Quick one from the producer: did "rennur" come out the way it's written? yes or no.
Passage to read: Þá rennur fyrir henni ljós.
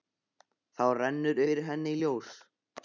yes